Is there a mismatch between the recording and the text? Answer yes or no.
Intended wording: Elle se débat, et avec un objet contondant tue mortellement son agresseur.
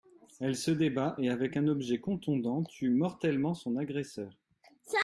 no